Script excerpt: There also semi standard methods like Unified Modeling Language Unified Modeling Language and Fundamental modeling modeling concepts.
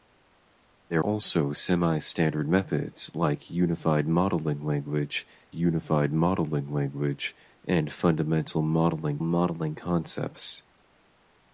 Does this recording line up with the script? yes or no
yes